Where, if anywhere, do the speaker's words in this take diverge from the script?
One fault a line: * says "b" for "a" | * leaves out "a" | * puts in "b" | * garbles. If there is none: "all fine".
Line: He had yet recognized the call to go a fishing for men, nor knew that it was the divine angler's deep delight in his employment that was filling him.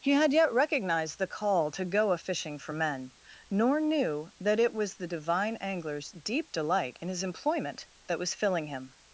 all fine